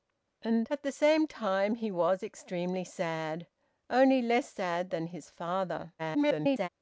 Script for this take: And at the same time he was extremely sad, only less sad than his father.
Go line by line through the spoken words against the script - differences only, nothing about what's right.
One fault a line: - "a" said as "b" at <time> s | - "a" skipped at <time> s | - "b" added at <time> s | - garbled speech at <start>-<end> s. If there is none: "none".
- garbled speech at 6.0-6.7 s